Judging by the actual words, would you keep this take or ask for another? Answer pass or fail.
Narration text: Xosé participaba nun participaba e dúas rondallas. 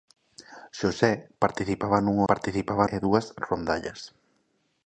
pass